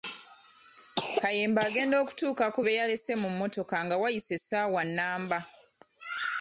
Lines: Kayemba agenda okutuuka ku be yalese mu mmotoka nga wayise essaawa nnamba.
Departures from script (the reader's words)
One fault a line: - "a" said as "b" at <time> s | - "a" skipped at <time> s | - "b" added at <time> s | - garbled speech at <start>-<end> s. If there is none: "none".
none